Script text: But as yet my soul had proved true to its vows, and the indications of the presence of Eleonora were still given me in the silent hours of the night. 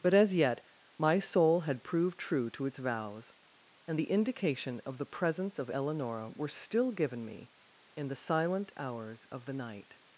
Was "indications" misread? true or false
true